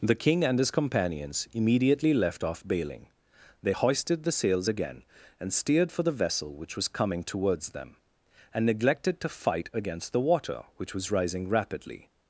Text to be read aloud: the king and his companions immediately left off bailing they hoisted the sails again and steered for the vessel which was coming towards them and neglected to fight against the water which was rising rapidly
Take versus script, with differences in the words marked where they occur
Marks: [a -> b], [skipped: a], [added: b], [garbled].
the king and his companions immediately left off bailing they hoisted the sails again and steered for the vessel which was coming towards them and neglected to fight against the water which was rising rapidly